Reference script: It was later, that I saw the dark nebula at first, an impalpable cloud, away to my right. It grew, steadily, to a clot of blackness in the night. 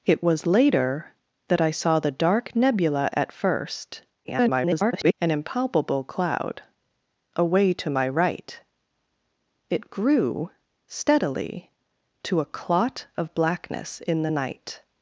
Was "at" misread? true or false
false